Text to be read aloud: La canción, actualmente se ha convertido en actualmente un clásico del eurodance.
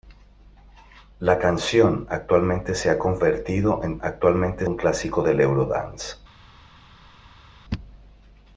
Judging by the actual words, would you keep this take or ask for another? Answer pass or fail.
pass